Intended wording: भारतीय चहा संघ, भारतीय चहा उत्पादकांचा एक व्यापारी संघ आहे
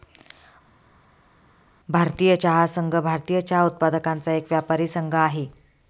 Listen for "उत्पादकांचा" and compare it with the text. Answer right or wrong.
right